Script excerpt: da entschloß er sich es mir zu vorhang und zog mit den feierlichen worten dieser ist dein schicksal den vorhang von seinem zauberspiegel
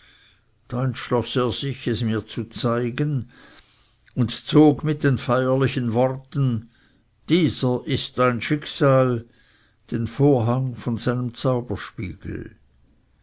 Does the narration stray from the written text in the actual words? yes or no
yes